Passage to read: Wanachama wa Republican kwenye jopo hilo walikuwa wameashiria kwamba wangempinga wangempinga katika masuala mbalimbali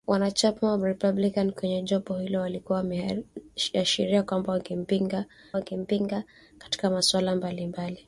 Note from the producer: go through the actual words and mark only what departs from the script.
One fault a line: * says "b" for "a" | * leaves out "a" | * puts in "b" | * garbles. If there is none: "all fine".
all fine